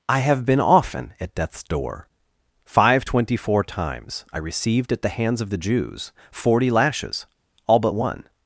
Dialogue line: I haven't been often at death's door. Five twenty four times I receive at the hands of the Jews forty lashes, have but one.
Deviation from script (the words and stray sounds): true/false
true